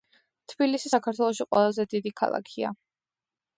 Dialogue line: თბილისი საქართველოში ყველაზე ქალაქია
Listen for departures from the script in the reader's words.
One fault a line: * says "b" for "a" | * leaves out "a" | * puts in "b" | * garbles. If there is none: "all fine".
* puts in "დიდი"